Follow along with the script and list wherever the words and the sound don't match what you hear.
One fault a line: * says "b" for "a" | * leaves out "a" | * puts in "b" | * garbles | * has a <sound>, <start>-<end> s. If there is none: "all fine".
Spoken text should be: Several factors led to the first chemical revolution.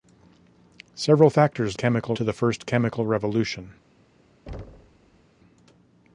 * says "chemical" for "led"
* has a thud, 4.5-5.2 s